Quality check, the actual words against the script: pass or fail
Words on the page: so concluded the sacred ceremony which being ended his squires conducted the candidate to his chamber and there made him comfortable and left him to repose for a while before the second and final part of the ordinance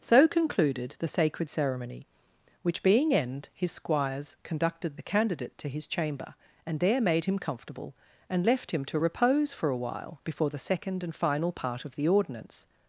fail